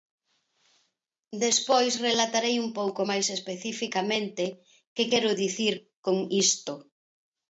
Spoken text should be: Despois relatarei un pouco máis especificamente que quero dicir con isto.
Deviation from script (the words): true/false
false